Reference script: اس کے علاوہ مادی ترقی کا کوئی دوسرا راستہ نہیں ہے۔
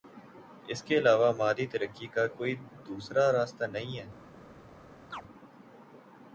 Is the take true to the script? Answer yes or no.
yes